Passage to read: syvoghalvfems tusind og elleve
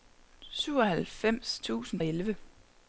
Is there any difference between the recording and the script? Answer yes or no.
no